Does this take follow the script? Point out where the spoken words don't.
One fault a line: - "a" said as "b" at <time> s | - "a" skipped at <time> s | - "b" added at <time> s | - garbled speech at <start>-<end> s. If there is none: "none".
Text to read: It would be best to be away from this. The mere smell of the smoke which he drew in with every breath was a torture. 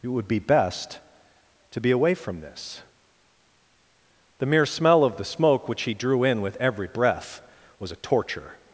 none